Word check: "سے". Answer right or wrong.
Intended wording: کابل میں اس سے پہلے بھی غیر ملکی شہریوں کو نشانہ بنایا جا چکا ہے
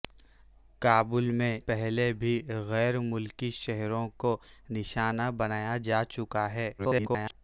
wrong